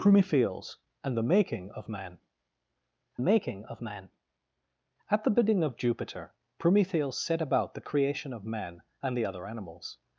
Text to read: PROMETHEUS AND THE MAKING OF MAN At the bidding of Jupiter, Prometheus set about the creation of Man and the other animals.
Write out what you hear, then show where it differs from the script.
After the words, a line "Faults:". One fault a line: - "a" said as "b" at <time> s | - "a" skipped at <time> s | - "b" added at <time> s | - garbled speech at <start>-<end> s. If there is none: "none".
PROMETHEUS AND THE MAKING OF MAN MAKING OF MAN At the bidding of Jupiter, Prometheus set about the creation of Man and the other animals.
Faults:
- "MAKING OF MAN" added at 3.2 s